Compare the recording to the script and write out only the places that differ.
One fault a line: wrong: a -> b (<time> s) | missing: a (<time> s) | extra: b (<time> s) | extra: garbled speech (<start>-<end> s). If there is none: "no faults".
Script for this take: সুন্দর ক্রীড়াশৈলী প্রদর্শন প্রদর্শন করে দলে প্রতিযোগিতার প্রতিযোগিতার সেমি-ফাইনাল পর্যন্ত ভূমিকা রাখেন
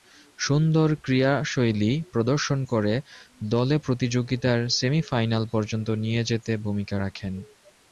missing: প্রদর্শন (2.6 s)
missing: প্রতিযোগিতার (4.6 s)
extra: নিয়ে যেতে (6.0 s)